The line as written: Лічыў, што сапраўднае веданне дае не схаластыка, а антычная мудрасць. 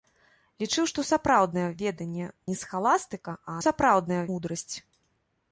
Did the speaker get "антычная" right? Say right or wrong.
wrong